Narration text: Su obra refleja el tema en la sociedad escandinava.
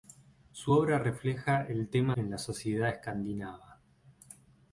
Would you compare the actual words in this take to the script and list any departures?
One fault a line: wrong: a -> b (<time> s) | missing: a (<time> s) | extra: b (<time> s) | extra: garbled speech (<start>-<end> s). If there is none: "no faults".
no faults